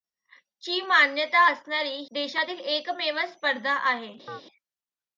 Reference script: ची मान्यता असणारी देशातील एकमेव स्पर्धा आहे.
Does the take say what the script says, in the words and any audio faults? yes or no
no